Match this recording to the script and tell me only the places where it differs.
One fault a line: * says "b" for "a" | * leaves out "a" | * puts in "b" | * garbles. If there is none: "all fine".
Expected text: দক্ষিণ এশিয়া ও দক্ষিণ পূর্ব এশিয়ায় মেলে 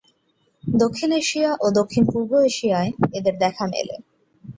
* puts in "এদের দেখা"